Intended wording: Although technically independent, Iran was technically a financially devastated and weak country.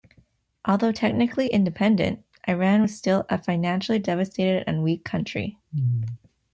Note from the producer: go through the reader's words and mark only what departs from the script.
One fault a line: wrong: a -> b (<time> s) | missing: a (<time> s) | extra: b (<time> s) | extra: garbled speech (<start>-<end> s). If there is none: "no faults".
wrong: technically -> still (2.9 s)